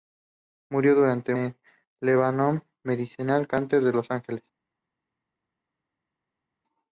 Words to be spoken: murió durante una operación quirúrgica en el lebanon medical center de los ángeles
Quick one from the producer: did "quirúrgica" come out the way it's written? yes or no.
no